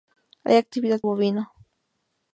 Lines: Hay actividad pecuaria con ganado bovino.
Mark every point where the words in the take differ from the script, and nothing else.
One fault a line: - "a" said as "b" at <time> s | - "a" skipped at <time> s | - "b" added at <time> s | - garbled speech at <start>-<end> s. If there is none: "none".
- "pecuaria con ganado" skipped at 1.0 s